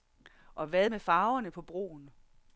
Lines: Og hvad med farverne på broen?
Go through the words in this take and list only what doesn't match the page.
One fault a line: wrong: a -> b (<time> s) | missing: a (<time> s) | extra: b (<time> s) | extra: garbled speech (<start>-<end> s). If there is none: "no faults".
no faults